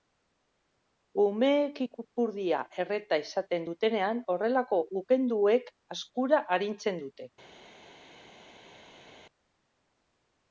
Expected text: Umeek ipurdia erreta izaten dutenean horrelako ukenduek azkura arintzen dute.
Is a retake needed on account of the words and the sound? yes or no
no